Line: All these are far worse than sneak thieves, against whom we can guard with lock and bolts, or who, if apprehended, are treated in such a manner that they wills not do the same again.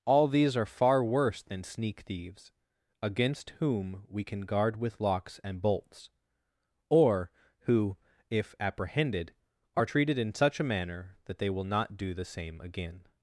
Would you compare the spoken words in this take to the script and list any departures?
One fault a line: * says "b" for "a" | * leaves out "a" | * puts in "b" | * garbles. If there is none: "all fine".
* says "locks" for "lock"
* says "will" for "wills"